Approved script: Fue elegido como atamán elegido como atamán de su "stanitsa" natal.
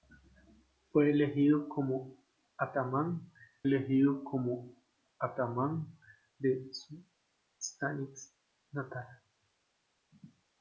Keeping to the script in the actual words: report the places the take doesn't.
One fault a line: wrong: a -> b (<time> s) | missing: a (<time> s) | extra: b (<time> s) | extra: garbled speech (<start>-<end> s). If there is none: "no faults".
no faults